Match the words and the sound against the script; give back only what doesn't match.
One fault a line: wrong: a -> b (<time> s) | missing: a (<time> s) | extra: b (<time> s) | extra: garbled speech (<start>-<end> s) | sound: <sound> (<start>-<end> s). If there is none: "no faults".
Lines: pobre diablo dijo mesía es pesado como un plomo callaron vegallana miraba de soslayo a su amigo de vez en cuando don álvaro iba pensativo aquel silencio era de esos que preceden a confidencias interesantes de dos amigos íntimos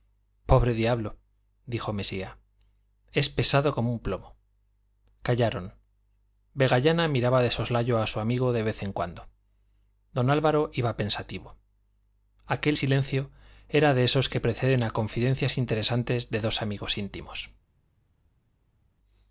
no faults